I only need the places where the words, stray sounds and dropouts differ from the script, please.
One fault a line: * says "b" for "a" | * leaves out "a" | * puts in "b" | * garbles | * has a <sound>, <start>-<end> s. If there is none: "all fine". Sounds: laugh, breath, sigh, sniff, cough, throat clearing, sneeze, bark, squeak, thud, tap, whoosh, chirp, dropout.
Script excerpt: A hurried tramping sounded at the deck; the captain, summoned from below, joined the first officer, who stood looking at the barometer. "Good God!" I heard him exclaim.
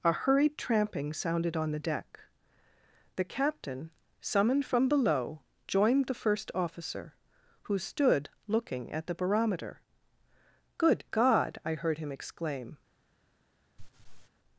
* says "on" for "at"
* has a laugh, 13.8-14.3 s